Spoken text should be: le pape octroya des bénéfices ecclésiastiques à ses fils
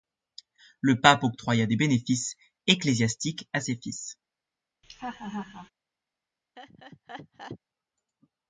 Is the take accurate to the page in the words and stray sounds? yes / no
no